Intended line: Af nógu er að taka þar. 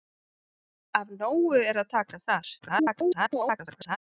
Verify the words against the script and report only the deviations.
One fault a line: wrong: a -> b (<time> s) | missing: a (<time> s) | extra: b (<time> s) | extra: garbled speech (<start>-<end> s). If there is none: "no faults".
extra: garbled speech (2.6-4.0 s)